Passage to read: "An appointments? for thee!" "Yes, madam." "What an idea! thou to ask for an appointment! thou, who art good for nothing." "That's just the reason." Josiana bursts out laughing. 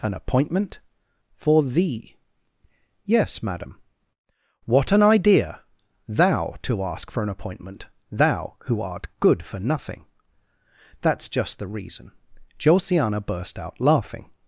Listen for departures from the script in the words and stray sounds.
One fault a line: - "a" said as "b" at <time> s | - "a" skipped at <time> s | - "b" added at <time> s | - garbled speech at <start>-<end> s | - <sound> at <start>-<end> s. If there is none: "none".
- "appointments" said as "appointment" at 0.1 s
- "bursts" said as "burst" at 13.2 s